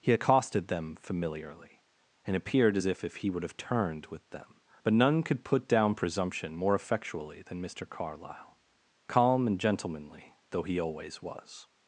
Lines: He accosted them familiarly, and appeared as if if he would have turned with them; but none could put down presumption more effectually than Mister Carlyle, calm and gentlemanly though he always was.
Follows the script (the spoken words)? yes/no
yes